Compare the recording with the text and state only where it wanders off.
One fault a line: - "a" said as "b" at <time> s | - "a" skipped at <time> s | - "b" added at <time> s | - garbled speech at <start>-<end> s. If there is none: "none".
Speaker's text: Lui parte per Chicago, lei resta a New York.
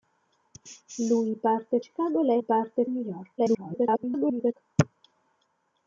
- "per" skipped at 1.8 s
- "resta" said as "parte" at 2.4 s
- garbled speech at 3.4-4.5 s